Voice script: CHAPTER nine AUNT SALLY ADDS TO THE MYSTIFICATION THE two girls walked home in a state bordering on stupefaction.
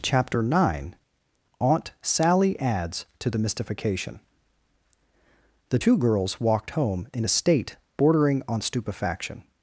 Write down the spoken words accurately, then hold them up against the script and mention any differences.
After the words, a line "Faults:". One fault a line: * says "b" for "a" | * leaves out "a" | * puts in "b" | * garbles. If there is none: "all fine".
CHAPTER nine AUNT SALLY ADDS TO THE MYSTIFICATION THE two girls walked home in a state bordering on stupefaction.
Faults:
all fine